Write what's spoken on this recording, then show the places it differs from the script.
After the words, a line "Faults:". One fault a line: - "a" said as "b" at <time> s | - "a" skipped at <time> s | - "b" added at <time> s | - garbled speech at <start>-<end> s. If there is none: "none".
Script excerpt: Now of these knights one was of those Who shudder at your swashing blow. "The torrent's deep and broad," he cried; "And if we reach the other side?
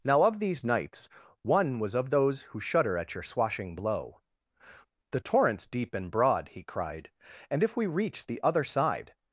Now of these knights one was of those Who shudder at your swashing blow. "The torrent's deep and broad," he cried; "And if we reach the other side?
Faults:
none